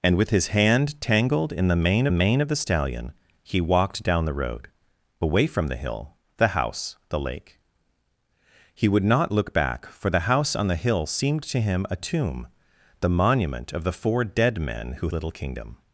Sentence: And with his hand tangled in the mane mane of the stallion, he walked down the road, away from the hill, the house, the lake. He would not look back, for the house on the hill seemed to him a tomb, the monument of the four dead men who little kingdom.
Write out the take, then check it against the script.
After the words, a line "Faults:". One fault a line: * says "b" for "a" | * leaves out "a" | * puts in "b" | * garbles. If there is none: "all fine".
And with his hand tangled in the mane mane of the stallion, he walked down the road, away from the hill, the house, the lake. He would not look back, for the house on the hill seemed to him a tomb, the monument of the four dead men who little kingdom.
Faults:
all fine